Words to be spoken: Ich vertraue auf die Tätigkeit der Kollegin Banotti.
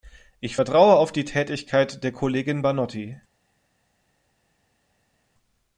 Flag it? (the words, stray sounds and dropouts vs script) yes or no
no